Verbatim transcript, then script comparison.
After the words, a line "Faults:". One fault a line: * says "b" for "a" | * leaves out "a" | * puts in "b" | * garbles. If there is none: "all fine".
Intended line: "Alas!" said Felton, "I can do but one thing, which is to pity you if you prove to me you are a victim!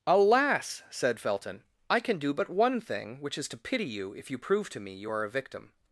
"Alas!" said Felton, "I can do but one thing, which is to pity you if you prove to me you are a victim!
Faults:
all fine